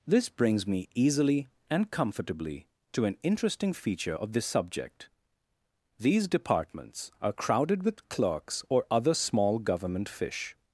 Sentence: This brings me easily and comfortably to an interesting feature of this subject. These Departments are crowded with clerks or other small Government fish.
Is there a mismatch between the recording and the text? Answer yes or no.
no